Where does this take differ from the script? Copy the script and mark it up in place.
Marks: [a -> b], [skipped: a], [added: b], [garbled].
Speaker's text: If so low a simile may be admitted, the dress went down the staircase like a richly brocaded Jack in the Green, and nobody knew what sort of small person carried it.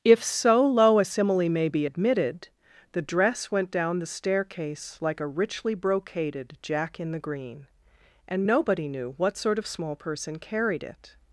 If so low a simile may be admitted, the dress went down the staircase like a richly brocaded Jack in the Green, and nobody knew what sort of small person carried it.